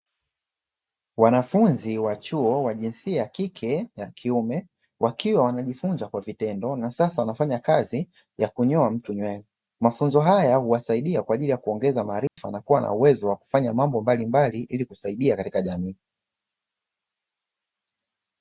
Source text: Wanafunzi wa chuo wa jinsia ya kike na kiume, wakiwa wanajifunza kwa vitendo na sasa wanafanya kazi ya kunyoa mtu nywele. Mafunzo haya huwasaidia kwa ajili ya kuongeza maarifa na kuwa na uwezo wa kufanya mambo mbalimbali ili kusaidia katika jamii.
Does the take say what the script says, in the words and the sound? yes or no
no